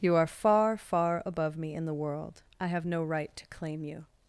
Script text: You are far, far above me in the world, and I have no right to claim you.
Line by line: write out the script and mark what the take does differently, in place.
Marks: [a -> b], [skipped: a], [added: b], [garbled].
You are far, far above me in the world, [skipped: and] I have no right to claim you.